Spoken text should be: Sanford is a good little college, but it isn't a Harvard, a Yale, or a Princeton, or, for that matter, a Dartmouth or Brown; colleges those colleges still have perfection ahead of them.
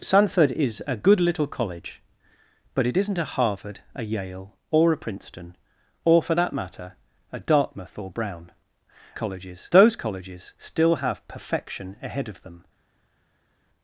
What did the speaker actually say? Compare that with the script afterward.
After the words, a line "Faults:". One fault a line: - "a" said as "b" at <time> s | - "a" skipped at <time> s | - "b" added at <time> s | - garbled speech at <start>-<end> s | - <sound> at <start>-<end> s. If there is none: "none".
Sanford is a good little college, but it isn't a Harvard, a Yale, or a Princeton, or, for that matter, a Dartmouth or Brown; colleges those colleges still have perfection ahead of them.
Faults:
none